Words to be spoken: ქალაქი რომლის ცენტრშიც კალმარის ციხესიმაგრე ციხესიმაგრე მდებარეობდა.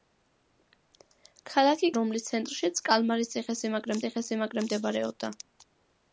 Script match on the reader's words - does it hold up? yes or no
yes